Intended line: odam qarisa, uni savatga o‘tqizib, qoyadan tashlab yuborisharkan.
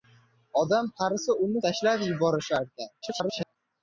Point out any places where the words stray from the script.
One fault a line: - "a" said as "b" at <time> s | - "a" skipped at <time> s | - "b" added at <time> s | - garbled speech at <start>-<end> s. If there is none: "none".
- "savatga o‘tqizib qoyadan" skipped at 1.6 s
- garbled speech at 3.0-3.6 s